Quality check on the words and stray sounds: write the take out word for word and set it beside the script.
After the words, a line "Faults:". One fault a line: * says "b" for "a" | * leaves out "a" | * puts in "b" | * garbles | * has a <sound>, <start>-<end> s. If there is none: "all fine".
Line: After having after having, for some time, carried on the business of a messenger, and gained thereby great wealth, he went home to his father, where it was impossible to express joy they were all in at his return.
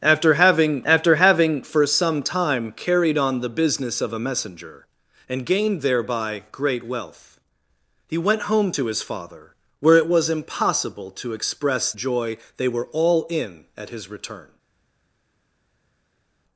After having after having, for some time, carried on the business of a messenger, and gained thereby great wealth, he went home to his father, where it was impossible to express joy they were all in at his return.
Faults:
all fine